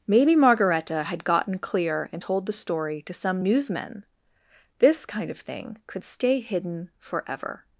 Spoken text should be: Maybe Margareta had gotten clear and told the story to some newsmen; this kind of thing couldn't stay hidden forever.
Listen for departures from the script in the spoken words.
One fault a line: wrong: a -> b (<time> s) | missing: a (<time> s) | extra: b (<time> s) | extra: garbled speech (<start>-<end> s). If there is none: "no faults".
wrong: couldn't -> could (5.9 s)